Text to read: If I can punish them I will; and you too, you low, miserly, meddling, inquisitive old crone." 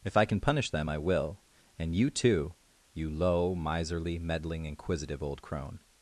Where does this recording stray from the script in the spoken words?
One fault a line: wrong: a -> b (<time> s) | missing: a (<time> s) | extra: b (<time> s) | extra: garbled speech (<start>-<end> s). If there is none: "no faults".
no faults